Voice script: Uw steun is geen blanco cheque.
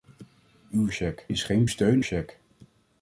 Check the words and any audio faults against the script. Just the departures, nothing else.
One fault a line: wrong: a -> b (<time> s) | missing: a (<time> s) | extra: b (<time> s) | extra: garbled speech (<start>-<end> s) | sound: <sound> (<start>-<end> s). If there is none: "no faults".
wrong: steun -> cheque (0.9 s)
wrong: blanco -> steun (1.7 s)